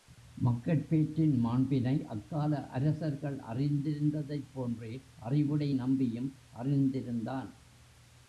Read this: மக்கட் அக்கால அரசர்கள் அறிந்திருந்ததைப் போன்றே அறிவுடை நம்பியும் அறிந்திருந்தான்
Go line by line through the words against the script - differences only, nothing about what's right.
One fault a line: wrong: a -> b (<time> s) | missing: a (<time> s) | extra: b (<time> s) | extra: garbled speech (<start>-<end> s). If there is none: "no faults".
extra: பேற்றின் மாண்பினை (0.9 s)